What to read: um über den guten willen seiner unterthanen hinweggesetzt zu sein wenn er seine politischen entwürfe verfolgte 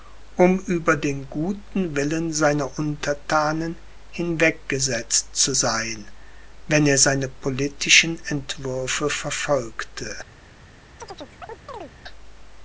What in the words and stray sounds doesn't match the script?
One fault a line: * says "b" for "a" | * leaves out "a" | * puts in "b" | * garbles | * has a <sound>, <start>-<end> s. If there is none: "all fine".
* has a chirp, 11.0-11.9 s